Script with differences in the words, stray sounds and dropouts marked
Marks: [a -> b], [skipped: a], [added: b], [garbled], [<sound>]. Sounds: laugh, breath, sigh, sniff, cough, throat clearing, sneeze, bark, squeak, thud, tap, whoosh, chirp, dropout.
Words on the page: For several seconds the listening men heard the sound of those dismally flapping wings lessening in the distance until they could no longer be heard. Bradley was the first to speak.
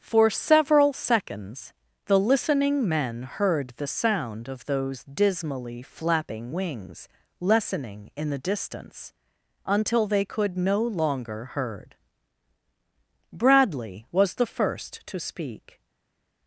For several seconds the listening men heard the sound of those dismally flapping wings lessening in the distance until they could no longer [skipped: be] heard. Bradley was the first to speak.